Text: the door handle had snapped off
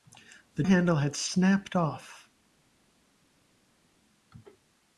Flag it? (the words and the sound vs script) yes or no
yes